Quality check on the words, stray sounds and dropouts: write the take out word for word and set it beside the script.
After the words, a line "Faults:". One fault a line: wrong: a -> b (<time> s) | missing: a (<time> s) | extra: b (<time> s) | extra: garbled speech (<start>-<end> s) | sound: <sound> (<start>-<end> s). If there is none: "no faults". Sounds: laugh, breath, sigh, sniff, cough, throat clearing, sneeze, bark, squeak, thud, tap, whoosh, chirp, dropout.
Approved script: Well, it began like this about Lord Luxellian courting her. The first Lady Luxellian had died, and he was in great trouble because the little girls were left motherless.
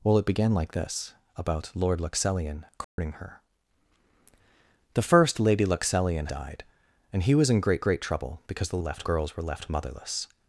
Well, it began like this about Lord Luxellian courting her. The first Lady Luxellian died, and he was in great great trouble because the left girls were left motherless.
Faults:
sound: dropout (2.8-3.0 s)
missing: had (6.3 s)
extra: great (7.8 s)
wrong: little -> left (8.8 s)